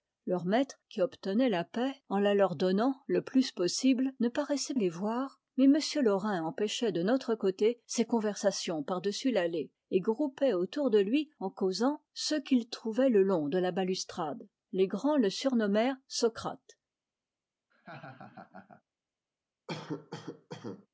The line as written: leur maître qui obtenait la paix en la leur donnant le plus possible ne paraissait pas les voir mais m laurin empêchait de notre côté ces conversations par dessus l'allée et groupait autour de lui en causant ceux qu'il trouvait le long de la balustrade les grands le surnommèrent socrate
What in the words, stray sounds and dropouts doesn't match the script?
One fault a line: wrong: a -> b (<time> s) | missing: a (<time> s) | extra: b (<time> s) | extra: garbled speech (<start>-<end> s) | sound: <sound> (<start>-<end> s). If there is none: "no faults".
missing: pas (4.7 s)
sound: laugh (17.7-18.8 s)
sound: cough (19.7-20.9 s)